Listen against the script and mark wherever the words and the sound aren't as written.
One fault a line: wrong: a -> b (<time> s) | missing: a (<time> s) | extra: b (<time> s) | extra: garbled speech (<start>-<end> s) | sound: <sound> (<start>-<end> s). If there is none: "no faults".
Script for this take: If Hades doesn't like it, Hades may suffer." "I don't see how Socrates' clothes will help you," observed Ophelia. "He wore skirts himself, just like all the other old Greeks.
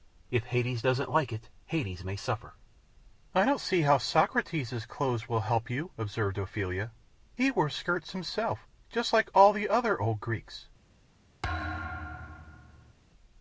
sound: thud (11.4-12.9 s)